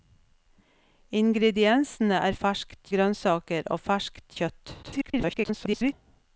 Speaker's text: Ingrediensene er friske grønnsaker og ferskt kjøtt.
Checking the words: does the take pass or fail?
fail